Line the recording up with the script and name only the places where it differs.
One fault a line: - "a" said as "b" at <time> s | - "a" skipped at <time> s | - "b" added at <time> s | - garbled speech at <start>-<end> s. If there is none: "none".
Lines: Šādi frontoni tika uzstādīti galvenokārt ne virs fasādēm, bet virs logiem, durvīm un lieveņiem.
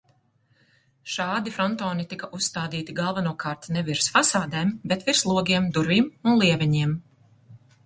none